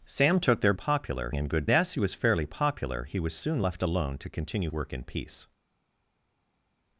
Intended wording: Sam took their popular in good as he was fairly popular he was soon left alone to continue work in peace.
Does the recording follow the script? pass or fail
pass